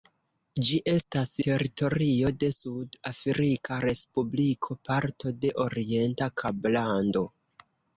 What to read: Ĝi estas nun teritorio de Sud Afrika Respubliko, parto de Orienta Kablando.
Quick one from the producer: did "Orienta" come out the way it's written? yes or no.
yes